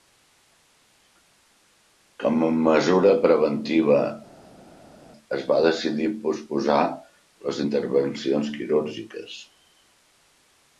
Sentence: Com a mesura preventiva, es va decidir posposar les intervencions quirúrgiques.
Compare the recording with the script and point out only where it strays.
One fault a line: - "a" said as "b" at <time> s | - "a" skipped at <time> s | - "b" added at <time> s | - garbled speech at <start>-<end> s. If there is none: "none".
none